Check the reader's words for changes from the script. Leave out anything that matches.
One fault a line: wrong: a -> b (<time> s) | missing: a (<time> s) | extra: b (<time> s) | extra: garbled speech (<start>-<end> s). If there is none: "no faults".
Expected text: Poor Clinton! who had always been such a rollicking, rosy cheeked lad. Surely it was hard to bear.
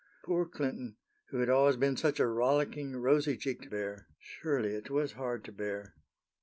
wrong: lad -> bear (3.7 s)